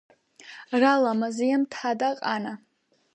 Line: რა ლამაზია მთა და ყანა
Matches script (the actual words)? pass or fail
pass